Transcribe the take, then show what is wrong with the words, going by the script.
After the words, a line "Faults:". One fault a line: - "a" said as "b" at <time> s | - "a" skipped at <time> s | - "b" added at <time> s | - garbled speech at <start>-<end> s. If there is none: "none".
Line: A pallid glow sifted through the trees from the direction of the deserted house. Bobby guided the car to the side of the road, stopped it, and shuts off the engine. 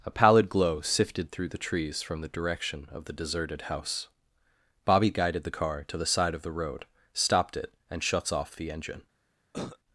A pallid glow sifted through the trees from the direction of the deserted house. Bobby guided the car to the side of the road, stopped it, and shuts off the engine.
Faults:
none